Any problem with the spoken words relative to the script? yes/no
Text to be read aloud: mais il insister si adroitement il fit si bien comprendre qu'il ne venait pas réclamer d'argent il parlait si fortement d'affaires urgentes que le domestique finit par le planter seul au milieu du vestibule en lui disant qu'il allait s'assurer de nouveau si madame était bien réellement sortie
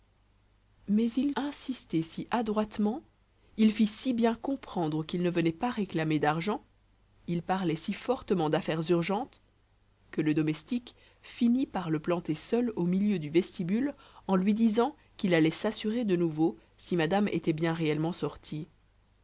no